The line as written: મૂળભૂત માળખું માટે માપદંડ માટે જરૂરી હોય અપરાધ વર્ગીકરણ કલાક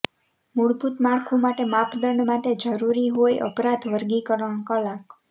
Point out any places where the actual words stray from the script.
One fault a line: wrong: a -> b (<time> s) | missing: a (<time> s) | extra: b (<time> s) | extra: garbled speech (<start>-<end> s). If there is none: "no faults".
no faults